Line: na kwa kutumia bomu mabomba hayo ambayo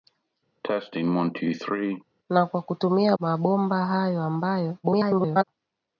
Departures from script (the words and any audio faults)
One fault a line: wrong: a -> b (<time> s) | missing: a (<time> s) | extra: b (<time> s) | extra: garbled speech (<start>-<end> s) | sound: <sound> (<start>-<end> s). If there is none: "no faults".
sound: cough (0.6-2.0 s)
missing: bomu (3.2 s)
extra: garbled speech (4.8-5.4 s)